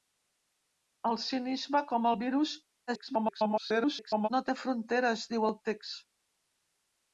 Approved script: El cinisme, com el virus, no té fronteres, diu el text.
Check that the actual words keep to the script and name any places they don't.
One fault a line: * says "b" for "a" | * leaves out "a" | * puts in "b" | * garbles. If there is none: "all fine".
* garbles